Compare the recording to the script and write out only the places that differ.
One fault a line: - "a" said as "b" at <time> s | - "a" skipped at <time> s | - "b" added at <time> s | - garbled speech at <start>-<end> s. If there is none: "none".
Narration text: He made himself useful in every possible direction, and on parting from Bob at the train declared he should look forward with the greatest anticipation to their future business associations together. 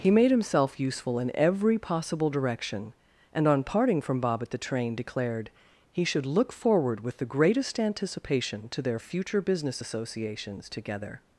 none